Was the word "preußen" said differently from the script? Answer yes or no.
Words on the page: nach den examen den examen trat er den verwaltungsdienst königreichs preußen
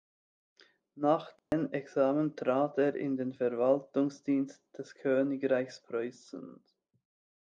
no